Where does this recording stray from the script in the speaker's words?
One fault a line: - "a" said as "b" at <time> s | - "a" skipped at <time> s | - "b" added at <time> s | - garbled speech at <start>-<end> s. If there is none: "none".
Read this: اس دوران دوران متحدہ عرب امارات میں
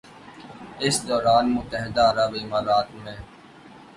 - "دوران" skipped at 1.4 s